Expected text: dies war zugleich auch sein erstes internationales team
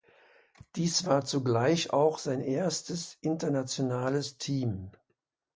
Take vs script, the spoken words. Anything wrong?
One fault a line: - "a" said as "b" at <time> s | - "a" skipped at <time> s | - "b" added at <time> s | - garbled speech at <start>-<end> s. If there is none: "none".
none